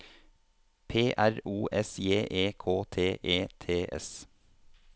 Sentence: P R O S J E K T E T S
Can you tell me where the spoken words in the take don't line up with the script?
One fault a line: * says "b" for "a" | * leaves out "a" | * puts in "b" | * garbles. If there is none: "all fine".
all fine